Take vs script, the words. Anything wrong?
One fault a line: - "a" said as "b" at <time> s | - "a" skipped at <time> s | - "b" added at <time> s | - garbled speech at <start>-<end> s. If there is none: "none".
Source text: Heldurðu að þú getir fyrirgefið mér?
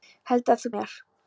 - "getir fyrirgefið" skipped at 0.7 s